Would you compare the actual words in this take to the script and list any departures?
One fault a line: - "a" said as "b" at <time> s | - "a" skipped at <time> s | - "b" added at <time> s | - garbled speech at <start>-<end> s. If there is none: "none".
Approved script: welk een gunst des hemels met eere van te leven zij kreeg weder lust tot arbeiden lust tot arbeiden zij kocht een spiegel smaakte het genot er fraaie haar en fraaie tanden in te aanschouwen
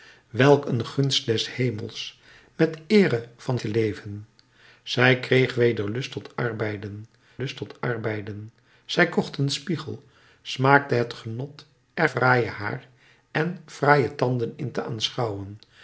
none